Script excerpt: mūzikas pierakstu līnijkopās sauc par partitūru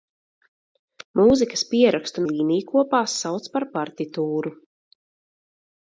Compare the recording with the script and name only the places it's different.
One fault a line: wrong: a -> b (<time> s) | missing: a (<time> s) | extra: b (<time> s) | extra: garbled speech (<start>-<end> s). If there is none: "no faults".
no faults